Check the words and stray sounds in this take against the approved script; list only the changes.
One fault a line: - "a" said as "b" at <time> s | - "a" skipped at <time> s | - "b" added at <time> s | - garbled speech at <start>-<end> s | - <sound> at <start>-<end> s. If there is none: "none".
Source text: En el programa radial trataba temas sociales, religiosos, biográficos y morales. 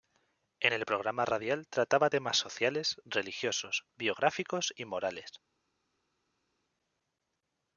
none